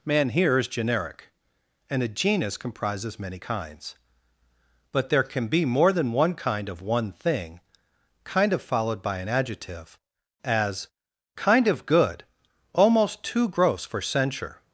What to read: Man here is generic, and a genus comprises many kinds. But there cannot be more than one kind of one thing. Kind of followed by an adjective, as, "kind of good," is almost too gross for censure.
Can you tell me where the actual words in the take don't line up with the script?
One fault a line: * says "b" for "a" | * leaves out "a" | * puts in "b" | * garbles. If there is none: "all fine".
* says "can" for "cannot"
* leaves out "is"